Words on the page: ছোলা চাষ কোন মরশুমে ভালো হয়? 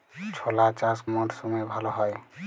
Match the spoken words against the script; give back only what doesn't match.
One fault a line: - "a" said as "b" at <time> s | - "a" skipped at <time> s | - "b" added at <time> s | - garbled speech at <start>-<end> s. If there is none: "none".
- "কোন" skipped at 1.0 s